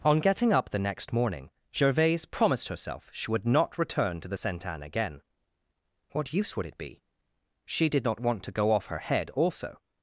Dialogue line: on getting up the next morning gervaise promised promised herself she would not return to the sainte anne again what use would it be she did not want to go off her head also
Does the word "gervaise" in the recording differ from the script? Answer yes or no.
no